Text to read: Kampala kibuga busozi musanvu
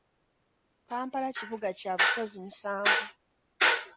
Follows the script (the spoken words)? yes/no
no